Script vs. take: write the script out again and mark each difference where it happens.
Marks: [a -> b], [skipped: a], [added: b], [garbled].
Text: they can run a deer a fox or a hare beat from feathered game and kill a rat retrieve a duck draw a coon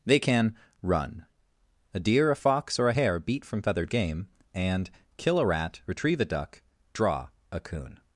they can run a deer a fox or a hare beat from feathered game and kill a rat retrieve a duck draw a coon